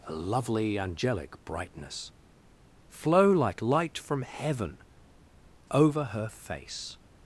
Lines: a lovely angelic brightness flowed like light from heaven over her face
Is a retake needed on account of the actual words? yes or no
yes